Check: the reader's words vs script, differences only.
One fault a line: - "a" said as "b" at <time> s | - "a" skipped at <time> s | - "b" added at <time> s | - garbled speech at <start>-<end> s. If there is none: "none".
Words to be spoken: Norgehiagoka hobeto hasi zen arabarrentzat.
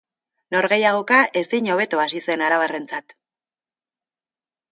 - "ezin" added at 1.4 s